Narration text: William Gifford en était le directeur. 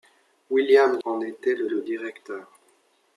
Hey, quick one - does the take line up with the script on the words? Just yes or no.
no